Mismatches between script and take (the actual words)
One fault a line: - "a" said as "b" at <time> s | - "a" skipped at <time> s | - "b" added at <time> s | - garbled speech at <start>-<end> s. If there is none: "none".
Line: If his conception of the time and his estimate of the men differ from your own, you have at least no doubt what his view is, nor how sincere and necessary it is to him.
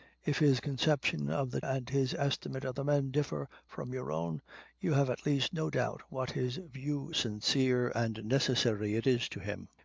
- "time" skipped at 1.6 s
- "is nor how" skipped at 7.1 s